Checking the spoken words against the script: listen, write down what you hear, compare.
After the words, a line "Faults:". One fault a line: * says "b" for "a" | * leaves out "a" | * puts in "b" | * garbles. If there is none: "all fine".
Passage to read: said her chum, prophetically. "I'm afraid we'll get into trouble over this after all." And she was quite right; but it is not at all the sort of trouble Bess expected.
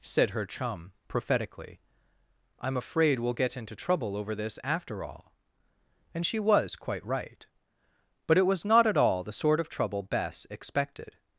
said her chum, prophetically. "I'm afraid we'll get into trouble over this after all." And she was quite right; but it was not at all the sort of trouble Bess expected.
Faults:
* says "was" for "is"